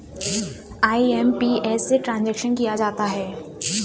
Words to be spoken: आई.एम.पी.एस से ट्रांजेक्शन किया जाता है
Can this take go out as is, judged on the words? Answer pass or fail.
pass